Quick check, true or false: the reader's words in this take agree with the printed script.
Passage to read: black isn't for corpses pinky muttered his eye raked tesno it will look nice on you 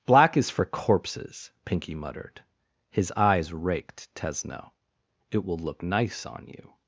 false